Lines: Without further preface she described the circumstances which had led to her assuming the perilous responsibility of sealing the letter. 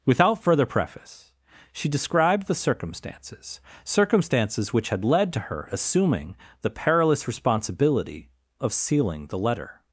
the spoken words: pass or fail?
fail